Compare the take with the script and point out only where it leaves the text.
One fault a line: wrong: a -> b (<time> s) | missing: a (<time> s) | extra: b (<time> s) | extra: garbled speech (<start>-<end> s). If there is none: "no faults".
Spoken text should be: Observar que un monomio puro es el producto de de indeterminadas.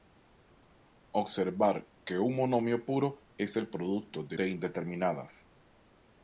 no faults